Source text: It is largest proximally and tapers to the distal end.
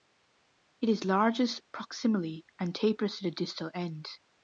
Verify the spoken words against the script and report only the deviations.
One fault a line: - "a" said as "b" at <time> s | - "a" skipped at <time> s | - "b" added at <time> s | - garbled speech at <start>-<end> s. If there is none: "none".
none